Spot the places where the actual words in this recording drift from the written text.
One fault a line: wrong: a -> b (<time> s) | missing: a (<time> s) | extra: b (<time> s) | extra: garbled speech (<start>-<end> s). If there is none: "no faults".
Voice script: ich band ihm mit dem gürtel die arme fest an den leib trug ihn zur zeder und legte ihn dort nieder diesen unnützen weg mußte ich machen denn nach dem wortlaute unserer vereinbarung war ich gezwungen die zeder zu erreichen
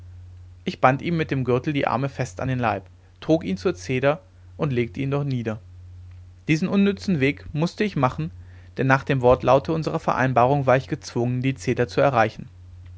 no faults